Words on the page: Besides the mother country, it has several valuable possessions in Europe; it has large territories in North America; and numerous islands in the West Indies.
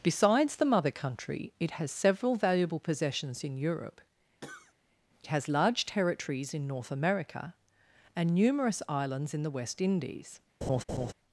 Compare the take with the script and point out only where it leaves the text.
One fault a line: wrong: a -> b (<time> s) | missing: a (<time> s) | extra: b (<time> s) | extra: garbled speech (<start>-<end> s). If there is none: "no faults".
missing: it (4.0 s)